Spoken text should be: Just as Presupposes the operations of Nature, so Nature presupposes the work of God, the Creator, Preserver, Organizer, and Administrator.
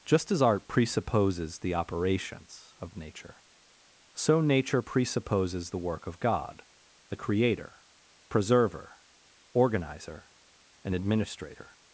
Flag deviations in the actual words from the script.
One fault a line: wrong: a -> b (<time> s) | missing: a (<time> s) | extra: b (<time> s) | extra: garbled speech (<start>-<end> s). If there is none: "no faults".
extra: Art (0.4 s)